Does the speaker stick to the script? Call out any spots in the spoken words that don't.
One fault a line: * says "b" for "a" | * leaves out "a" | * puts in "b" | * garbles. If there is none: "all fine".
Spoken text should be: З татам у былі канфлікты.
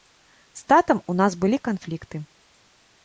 * puts in "нас"